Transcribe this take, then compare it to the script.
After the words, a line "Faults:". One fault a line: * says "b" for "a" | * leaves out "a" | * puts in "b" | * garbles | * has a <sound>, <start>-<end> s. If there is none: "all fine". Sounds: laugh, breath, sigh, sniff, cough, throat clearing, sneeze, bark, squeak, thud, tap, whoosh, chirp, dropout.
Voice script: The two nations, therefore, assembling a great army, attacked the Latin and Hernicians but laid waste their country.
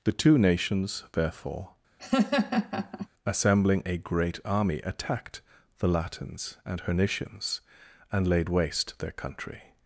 The two nations, therefore, assembling a great army, attacked the Latins and Hernicians and laid waste their country.
Faults:
* has a laugh, 2.0-3.1 s
* says "Latins" for "Latin"
* says "and" for "but"